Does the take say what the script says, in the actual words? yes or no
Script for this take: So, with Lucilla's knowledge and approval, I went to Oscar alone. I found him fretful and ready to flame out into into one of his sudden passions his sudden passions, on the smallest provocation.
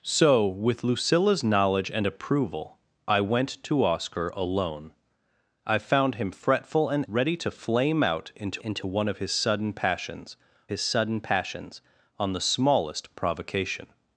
yes